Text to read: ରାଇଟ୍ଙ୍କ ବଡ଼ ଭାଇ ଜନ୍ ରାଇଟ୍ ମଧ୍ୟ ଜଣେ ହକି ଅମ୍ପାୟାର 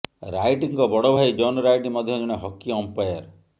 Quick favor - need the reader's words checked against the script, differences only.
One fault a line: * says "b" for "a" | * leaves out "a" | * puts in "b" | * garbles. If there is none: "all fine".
all fine